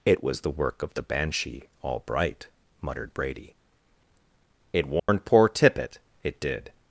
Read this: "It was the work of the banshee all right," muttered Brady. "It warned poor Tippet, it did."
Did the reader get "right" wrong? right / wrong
wrong